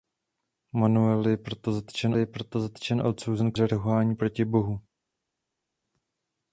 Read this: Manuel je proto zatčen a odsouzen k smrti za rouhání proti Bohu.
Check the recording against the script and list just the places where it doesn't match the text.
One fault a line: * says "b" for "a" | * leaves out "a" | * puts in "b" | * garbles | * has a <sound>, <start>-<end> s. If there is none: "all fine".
* puts in "je proto zatčen"
* leaves out "smrti"